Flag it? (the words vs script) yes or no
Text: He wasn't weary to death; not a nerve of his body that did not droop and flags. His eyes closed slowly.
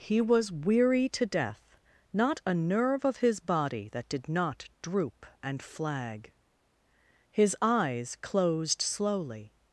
yes